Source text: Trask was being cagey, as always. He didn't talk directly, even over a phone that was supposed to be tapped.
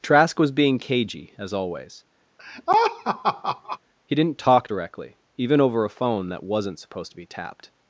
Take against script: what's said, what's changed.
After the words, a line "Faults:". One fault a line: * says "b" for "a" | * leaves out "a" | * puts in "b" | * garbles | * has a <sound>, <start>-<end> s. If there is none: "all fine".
Trask was being cagey, as always. He didn't talk directly, even over a phone that wasn't supposed to be tapped.
Faults:
* has a laugh, 2.4-3.8 s
* says "wasn't" for "was"